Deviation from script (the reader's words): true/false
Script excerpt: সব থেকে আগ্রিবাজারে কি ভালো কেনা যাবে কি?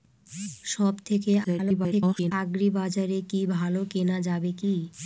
true